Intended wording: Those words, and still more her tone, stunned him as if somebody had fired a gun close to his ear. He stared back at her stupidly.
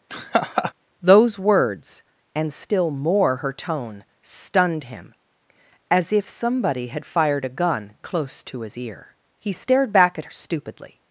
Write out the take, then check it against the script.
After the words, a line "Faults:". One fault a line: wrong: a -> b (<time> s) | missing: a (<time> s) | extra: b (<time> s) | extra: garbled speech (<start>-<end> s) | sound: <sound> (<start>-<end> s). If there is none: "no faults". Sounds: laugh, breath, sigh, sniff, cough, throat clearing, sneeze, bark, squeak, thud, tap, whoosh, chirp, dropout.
Those words, and still more her tone, stunned him as if somebody had fired a gun close to his ear. He stared back at stupidly.
Faults:
sound: laugh (0.1-0.7 s)
missing: her (10.3 s)